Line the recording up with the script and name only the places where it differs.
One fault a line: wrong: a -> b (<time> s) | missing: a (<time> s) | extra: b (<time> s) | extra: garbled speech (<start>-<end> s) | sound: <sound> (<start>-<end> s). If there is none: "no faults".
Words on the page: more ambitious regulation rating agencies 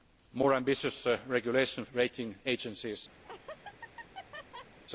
sound: laugh (3.2-4.8 s)